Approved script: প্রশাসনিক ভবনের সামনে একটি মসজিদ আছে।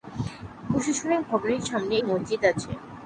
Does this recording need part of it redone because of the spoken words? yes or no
yes